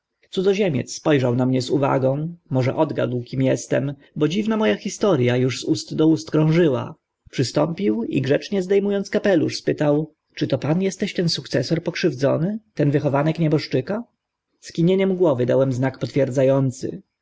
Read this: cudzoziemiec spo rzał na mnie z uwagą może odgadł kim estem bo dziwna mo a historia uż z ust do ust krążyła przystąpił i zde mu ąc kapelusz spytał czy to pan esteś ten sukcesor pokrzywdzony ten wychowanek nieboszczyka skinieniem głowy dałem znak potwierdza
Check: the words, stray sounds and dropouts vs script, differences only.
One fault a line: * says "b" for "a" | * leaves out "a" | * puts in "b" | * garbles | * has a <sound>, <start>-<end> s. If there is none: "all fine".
* puts in "grzecznie"